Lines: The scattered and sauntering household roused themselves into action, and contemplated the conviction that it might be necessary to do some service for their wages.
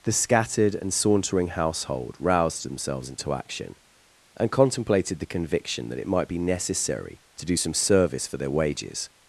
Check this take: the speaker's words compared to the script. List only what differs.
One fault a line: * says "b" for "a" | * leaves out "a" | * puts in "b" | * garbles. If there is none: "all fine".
all fine